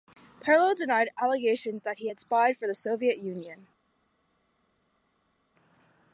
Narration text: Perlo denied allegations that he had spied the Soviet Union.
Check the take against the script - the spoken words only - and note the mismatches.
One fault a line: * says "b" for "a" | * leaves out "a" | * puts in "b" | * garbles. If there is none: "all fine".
* puts in "for"